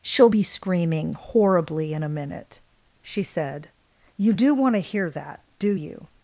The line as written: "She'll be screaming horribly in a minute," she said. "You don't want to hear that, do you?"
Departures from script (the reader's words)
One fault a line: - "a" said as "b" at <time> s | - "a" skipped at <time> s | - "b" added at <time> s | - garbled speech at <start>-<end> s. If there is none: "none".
- "don't" said as "do" at 4.3 s